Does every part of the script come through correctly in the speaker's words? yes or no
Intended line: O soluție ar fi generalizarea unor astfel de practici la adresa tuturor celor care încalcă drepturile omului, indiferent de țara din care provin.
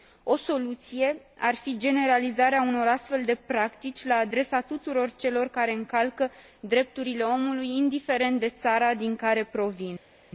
yes